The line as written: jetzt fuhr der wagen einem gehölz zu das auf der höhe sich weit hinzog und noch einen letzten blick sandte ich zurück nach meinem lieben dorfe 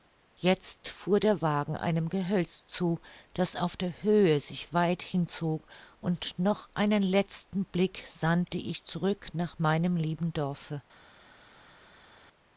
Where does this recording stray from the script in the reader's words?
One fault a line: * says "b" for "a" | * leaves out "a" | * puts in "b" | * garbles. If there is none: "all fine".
all fine